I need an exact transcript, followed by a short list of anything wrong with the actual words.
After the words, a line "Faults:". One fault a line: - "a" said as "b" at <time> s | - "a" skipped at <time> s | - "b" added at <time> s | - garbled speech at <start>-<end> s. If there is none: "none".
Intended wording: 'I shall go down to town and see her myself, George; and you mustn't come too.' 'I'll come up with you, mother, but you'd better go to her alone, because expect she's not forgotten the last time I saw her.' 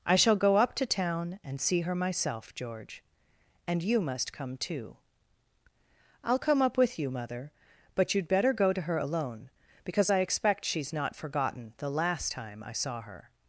'I shall go up to town and see her myself, George; and you must come too.' 'I'll come up with you, mother, but you'd better go to her alone, because I expect she's not forgotten the last time I saw her.'
Faults:
- "down" said as "up" at 0.6 s
- "mustn't" said as "must" at 4.0 s
- "I" added at 10.1 s